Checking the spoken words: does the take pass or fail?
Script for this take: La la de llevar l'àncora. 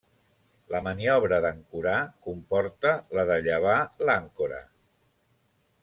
fail